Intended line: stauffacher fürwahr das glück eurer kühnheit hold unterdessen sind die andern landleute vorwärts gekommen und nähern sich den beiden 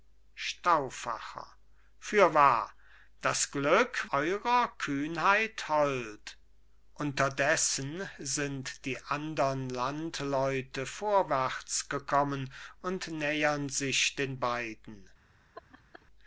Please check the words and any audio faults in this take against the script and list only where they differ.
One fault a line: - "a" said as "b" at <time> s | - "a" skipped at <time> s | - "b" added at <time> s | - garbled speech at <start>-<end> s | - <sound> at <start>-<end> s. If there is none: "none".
- laugh at 15.5-16.1 s